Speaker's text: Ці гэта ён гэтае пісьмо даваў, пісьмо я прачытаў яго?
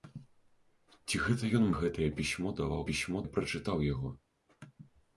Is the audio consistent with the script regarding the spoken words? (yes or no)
yes